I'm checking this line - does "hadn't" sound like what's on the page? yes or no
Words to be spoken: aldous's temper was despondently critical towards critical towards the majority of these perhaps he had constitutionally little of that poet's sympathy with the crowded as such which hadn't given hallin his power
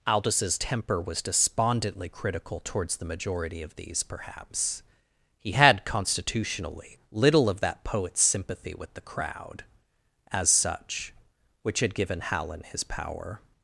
no